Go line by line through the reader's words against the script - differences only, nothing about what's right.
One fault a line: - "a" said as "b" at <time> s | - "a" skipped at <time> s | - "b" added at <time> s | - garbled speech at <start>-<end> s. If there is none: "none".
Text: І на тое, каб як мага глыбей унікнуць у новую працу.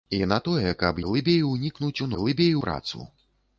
- "як мага" skipped at 1.0 s
- "новую" said as "глыбей" at 2.2 s